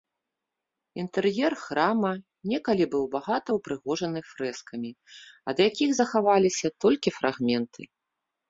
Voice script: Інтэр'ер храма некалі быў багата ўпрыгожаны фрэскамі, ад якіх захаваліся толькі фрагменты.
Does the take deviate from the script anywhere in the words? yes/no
no